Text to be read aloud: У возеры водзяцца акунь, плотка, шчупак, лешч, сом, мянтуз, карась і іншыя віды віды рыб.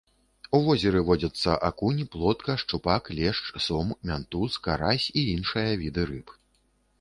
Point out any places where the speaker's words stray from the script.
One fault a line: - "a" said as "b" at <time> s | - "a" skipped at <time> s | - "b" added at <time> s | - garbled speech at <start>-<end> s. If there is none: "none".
- "віды" skipped at 6.1 s